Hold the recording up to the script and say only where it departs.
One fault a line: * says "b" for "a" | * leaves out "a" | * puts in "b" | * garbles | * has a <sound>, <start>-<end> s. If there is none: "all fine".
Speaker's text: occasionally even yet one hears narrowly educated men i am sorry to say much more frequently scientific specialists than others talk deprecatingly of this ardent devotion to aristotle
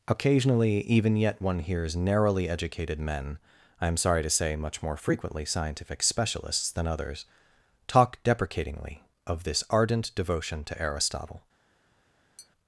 * has a tap, 12.4-12.5 s